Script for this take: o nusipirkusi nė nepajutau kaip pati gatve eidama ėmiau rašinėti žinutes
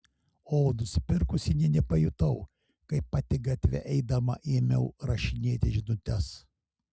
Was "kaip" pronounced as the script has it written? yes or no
yes